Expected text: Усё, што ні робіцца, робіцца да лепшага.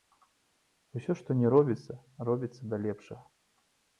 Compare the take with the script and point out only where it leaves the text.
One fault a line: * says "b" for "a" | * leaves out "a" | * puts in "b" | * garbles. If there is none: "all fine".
all fine